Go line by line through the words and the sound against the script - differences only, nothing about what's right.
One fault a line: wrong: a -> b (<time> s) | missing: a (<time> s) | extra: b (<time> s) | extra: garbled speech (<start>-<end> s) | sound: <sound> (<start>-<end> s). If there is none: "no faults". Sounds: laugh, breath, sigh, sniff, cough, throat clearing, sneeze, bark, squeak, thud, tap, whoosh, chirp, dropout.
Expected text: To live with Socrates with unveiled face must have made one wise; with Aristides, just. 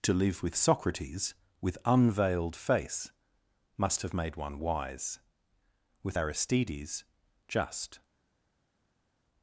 no faults